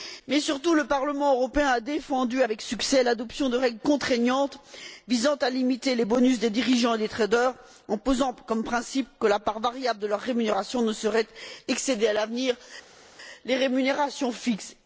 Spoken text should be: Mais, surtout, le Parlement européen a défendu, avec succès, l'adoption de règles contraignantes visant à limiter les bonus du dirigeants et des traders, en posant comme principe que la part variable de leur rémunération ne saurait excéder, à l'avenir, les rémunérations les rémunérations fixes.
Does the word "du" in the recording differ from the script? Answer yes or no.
yes